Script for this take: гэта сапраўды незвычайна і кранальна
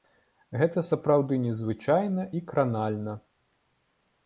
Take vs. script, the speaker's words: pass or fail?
pass